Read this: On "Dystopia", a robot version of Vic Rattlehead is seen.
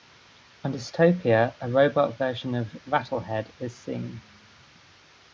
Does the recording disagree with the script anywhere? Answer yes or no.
yes